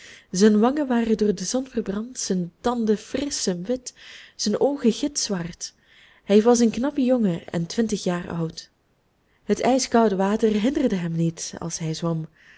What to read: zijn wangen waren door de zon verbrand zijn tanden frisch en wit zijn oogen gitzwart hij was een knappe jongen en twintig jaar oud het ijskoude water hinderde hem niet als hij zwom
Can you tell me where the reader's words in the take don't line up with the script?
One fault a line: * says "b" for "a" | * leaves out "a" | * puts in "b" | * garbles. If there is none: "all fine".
all fine